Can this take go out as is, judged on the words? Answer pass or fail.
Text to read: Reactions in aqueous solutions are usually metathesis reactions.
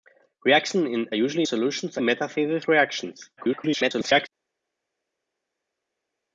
fail